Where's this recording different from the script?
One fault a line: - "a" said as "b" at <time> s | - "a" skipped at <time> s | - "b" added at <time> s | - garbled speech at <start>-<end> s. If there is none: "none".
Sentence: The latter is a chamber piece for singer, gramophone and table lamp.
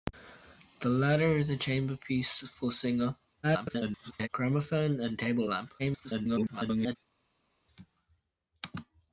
- garbled speech at 3.4-4.3 s
- garbled speech at 5.8-7.0 s